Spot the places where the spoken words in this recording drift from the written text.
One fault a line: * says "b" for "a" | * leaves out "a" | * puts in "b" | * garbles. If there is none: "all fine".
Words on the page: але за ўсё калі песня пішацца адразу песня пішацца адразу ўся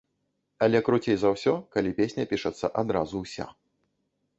* puts in "круцей"
* leaves out "песня пішацца адразу"